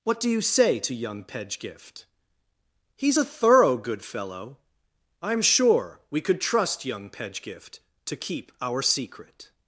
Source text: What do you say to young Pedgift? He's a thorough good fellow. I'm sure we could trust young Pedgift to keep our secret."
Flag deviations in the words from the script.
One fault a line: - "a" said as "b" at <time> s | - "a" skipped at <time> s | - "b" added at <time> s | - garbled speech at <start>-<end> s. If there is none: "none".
none